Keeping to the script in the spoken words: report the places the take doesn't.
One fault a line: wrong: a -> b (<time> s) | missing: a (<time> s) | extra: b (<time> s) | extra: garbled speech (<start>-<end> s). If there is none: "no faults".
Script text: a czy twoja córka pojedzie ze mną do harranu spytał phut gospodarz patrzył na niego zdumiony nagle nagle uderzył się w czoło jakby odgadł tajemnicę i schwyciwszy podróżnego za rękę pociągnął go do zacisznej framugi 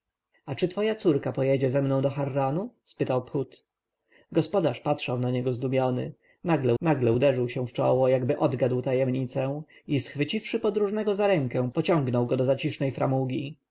no faults